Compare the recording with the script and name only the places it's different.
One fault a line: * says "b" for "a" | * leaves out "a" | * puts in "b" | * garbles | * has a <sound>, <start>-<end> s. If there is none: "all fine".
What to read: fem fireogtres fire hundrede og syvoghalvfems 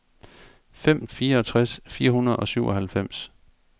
all fine